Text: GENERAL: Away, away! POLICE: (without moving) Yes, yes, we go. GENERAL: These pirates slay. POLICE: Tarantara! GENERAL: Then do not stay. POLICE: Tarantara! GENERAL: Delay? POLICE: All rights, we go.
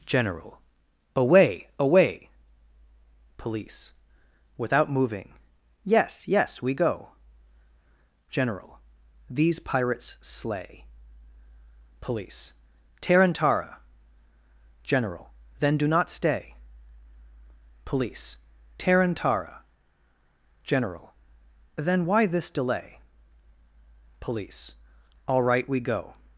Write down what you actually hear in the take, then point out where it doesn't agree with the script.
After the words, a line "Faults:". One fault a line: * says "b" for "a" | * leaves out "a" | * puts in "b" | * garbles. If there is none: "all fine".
GENERAL: Away, away! POLICE: (without moving) Yes, yes, we go. GENERAL: These pirates slay. POLICE: Tarantara! GENERAL: Then do not stay. POLICE: Tarantara! GENERAL: Then why this delay? POLICE: All right, we go.
Faults:
* puts in "Then why this"
* says "right" for "rights"